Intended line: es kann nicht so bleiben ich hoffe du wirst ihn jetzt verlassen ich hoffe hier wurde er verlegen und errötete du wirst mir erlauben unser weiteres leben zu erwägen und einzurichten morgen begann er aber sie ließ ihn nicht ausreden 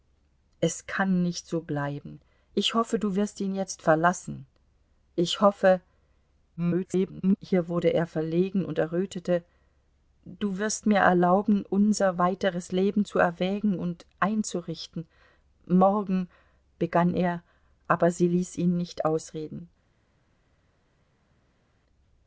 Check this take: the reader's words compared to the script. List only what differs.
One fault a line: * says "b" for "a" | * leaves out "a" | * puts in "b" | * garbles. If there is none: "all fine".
* garbles